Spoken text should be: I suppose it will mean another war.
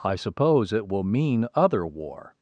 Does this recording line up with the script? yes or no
no